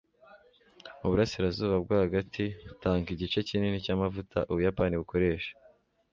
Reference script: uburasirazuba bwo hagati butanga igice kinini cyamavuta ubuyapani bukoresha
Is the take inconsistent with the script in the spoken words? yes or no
no